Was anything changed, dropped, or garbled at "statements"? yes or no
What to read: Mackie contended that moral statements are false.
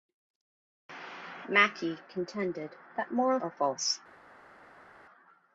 yes